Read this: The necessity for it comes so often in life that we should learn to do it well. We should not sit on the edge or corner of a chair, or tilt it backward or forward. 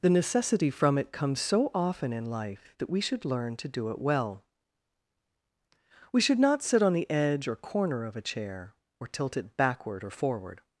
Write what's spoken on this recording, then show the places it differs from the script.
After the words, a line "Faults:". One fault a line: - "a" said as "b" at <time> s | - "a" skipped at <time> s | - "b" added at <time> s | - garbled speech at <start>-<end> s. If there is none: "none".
The necessity from it comes so often in life that we should learn to do it well. We should not sit on the edge or corner of a chair, or tilt it backward or forward.
Faults:
- "for" said as "from" at 0.7 s